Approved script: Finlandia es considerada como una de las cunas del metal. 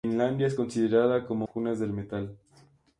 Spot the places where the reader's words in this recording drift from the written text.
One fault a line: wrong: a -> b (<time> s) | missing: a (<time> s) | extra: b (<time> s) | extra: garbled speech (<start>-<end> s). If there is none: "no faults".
missing: una de las (1.5 s)